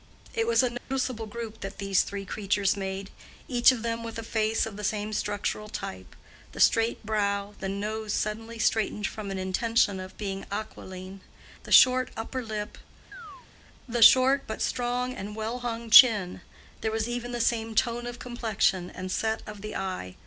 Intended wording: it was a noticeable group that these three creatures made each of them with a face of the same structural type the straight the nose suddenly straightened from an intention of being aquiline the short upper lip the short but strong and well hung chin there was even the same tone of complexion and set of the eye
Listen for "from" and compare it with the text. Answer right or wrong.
right